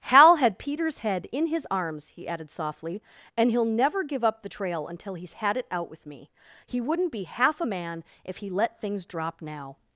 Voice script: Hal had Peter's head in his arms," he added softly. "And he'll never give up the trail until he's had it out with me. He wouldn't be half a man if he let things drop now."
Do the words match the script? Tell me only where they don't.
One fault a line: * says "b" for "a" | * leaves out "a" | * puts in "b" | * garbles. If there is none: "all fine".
all fine